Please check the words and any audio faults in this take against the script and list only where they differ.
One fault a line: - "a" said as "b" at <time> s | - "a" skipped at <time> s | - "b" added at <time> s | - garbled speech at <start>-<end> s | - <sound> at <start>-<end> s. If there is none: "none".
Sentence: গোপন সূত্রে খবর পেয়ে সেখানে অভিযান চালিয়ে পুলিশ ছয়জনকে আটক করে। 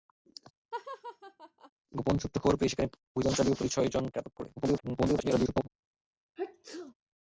- laugh at 0.7-1.7 s
- garbled speech at 4.6-5.7 s
- sneeze at 6.4-6.9 s